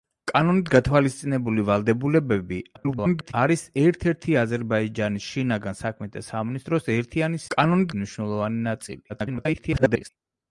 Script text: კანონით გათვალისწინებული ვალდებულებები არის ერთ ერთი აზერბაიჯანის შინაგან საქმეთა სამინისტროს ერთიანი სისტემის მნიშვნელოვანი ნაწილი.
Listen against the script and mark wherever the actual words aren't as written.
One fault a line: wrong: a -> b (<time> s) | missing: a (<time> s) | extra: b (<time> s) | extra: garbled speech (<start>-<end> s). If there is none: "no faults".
extra: garbled speech (2.8-3.3 s)
wrong: სისტემის -> კანონით (7.5 s)
extra: garbled speech (9.1-10.1 s)